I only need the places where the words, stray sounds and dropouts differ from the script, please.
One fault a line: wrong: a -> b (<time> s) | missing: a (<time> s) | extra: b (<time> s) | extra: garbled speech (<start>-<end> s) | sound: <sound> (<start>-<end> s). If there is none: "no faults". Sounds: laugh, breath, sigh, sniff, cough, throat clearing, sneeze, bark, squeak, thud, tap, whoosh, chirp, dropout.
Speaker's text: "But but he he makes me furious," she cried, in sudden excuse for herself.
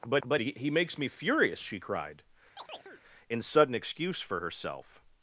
sound: chirp (2.6-3.0 s)